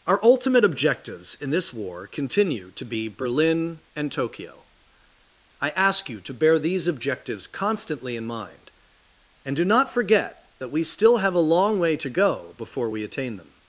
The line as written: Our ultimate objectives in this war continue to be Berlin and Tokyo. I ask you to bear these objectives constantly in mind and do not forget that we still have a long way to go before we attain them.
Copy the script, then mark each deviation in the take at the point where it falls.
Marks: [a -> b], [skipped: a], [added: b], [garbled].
Our ultimate objectives in this war continue to be Berlin and Tokyo. I ask you to bear these objectives constantly in mind and do not forget that we still have a long way to go before we attain them.